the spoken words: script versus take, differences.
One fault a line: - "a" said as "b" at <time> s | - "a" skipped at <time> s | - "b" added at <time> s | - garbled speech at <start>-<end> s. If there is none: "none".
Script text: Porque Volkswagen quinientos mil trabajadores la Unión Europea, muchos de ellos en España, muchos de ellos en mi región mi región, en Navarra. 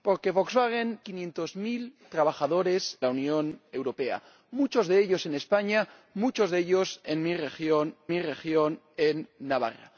none